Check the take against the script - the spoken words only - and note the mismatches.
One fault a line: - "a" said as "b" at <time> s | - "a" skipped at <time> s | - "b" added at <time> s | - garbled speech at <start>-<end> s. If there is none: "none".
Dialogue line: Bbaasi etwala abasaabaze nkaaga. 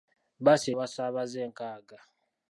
- "etwala" skipped at 0.7 s